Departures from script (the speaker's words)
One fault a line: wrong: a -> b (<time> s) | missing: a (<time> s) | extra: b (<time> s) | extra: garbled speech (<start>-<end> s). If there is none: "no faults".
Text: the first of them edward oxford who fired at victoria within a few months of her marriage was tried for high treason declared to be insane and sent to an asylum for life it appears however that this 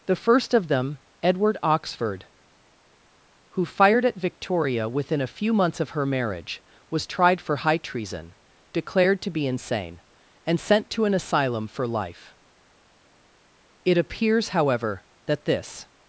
no faults